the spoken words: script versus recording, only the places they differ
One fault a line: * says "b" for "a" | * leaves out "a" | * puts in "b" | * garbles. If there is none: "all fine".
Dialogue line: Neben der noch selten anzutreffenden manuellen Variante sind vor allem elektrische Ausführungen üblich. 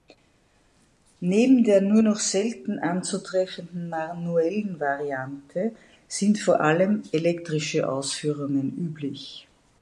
* puts in "nur"